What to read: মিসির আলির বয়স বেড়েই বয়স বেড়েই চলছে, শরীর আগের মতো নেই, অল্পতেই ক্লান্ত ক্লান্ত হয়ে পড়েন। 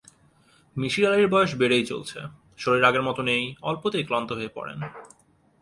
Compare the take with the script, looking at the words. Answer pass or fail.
fail